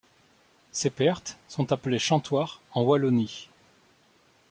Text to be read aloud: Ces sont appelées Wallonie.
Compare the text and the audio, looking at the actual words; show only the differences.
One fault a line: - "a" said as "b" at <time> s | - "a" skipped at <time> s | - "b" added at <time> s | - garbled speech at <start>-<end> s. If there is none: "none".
- "pertes" added at 0.9 s
- "chantoirs en" added at 2.0 s